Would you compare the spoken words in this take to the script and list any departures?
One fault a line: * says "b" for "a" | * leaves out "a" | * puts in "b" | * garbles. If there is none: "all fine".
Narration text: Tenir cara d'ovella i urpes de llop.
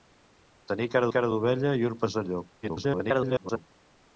* puts in "cara"
* garbles